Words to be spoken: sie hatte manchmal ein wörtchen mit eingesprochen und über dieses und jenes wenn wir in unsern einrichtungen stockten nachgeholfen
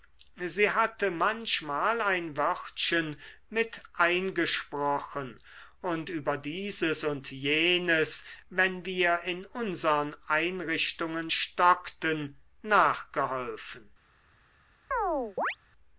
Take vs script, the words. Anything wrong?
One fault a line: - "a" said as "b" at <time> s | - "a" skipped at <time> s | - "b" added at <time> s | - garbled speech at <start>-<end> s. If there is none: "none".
none